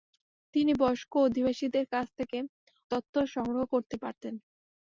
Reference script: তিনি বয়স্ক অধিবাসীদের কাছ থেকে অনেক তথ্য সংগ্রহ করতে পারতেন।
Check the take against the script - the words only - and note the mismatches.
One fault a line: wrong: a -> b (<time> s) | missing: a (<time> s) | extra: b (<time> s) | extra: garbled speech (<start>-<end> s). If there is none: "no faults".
missing: অনেক (2.4 s)